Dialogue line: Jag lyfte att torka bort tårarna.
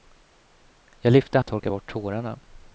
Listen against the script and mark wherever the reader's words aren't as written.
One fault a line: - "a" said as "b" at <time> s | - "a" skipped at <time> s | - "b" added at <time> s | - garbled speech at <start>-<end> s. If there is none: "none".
none